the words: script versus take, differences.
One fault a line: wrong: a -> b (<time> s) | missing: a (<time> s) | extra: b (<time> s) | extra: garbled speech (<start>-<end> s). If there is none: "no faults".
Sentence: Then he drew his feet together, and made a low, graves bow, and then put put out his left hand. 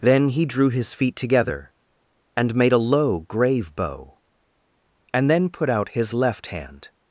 wrong: graves -> grave (3.2 s)
missing: put (5.7 s)